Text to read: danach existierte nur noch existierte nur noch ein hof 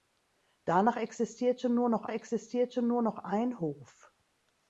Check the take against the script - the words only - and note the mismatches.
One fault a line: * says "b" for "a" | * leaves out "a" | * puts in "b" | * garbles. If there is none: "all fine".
all fine